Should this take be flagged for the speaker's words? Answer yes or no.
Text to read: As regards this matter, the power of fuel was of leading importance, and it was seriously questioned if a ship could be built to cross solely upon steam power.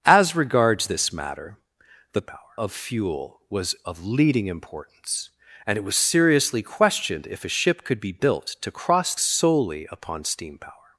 no